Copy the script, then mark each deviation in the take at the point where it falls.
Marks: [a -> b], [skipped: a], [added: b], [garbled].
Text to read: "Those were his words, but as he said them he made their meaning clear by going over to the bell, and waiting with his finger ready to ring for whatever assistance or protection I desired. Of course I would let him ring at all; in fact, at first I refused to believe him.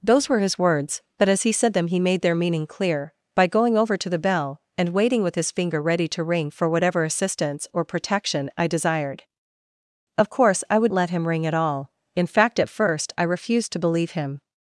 "Those were his words, but as he said them he made their meaning clear by going over to the bell, and waiting with his finger ready to ring for whatever assistance or protection I desired. Of course I would let him ring at all; in fact, at first I refused to believe him.